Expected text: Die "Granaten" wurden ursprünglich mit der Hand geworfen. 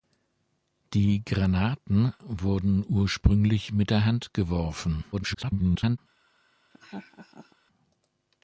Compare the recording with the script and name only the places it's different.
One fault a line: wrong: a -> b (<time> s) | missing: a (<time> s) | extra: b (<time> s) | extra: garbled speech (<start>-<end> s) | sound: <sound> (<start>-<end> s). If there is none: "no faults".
extra: garbled speech (5.1-6.0 s)
sound: laugh (6.7-7.6 s)